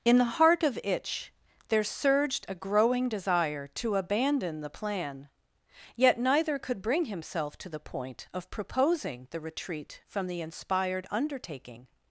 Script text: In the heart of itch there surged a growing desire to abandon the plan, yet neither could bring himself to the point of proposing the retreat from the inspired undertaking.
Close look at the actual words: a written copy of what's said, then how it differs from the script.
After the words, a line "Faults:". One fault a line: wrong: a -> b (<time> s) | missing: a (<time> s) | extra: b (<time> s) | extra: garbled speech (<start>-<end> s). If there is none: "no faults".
In the heart of itch there surged a growing desire to abandon the plan, yet neither could bring himself to the point of proposing the retreat from the inspired undertaking.
Faults:
no faults